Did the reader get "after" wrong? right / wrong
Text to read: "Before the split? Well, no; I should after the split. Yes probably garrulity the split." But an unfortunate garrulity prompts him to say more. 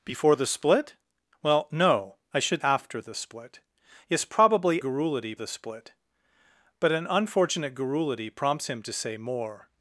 right